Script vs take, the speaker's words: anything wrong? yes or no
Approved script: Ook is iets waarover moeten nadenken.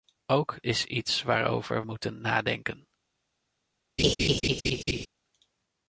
no